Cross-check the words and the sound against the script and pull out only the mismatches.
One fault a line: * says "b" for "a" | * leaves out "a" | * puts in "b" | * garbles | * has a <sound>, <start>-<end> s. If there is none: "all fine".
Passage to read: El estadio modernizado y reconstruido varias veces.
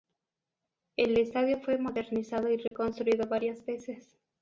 * puts in "fue"
* has a dropout, 2.7-2.7 s